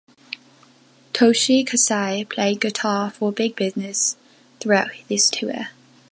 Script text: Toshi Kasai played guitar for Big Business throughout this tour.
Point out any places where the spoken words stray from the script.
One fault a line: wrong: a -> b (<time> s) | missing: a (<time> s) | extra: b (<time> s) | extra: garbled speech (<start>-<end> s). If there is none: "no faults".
no faults